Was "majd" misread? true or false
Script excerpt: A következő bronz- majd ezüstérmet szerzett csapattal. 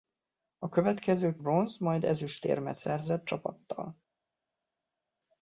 false